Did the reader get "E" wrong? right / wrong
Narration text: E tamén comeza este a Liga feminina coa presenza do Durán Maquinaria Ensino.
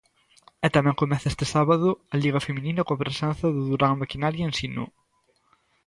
right